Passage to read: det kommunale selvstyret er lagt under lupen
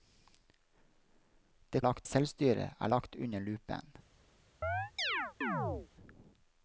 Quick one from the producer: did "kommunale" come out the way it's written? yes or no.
no